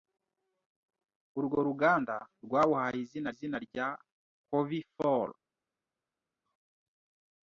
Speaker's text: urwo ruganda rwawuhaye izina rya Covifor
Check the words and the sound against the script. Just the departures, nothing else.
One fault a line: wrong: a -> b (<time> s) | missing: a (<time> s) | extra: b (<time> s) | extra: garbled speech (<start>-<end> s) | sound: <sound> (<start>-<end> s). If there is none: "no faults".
extra: izina (3.3 s)